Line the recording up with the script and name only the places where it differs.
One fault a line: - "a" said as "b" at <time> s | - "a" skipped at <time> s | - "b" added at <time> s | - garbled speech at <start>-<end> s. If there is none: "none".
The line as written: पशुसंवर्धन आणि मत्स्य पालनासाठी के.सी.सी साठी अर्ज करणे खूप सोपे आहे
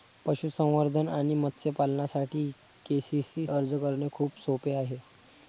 - "साठी" skipped at 3.5 s